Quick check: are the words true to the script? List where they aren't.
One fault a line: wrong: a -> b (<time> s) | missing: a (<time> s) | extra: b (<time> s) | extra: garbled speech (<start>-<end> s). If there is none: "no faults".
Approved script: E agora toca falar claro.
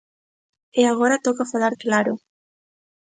no faults